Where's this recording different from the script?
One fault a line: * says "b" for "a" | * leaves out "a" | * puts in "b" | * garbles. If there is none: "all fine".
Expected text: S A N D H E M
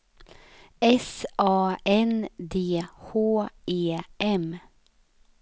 all fine